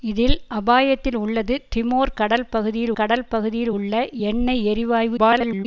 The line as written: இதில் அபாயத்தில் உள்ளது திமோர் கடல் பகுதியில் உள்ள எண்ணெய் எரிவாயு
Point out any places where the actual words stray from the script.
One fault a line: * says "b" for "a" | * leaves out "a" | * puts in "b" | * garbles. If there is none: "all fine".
* puts in "கடல் பகுதியில்"
* garbles